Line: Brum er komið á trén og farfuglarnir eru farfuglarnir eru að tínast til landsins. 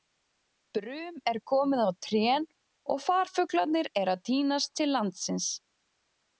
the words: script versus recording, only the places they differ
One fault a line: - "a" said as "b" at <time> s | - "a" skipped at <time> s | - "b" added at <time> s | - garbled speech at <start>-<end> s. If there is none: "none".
- "farfuglarnir eru" skipped at 4.2 s